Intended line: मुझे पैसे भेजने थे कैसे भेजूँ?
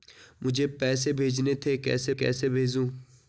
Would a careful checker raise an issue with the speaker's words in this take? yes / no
yes